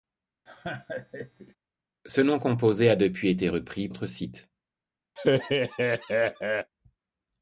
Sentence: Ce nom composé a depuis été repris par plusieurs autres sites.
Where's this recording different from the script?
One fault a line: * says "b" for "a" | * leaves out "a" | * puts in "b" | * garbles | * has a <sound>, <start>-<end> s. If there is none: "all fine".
* has a laugh, 0.5-1.6 s
* leaves out "par plusieurs"
* has a laugh, 5.2-6.7 s